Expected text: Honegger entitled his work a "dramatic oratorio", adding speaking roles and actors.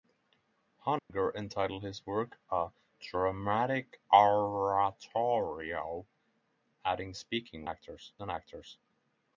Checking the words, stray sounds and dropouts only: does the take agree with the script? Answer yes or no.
no